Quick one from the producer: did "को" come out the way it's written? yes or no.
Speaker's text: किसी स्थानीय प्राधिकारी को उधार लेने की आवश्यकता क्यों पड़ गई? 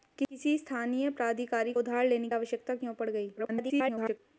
no